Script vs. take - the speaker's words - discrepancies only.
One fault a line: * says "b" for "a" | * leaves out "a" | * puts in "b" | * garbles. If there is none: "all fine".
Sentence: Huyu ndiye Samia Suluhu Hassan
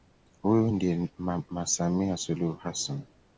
* puts in "mama"